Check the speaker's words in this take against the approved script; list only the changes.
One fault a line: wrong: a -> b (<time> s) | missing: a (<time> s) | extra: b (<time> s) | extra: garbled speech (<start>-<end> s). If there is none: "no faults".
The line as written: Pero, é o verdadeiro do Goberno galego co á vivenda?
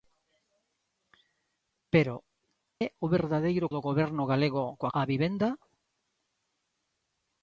no faults